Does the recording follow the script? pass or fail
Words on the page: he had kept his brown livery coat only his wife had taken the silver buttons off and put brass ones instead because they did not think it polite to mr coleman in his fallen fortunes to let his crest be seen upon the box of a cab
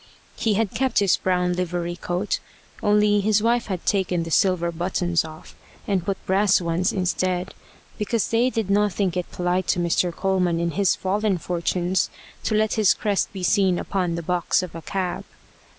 pass